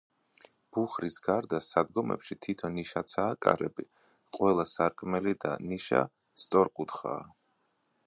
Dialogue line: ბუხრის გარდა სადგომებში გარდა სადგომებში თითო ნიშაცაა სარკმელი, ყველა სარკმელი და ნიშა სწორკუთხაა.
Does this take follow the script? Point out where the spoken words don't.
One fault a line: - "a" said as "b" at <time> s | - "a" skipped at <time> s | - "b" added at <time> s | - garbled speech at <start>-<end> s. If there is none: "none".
- "გარდა სადგომებში" skipped at 2.4 s
- "სარკმელი" said as "კარები" at 3.5 s